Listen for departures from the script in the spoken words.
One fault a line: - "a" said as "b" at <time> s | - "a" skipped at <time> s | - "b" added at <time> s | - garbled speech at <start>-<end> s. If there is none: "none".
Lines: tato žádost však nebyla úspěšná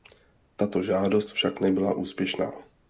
none